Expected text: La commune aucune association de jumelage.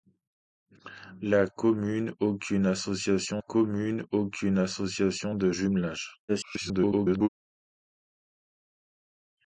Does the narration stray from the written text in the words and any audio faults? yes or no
yes